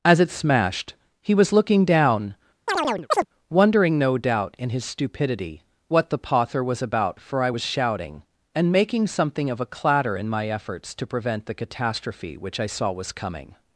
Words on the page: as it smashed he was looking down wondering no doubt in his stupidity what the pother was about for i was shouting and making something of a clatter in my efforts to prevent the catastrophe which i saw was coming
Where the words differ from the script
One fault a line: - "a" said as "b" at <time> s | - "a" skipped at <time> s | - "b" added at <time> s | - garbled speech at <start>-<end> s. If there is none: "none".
none